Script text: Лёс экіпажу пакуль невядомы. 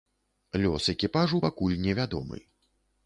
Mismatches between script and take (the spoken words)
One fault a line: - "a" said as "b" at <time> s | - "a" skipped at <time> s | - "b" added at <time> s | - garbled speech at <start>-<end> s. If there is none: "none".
none